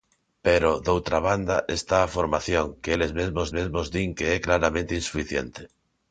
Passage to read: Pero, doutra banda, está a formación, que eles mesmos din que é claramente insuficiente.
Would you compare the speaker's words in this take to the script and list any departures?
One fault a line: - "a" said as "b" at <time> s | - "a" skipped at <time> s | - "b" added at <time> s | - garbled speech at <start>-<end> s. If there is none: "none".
- "mesmos" added at 3.6 s